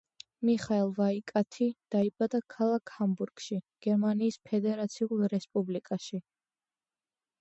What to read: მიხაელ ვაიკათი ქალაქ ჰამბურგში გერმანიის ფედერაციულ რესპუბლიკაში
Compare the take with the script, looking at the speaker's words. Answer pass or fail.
fail